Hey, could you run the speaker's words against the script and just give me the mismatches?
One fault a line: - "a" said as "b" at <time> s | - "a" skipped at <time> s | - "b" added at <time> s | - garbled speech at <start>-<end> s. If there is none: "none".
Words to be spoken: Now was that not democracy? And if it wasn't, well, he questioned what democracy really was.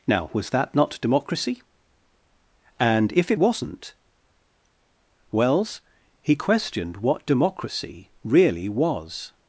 - "well" said as "wells" at 5.3 s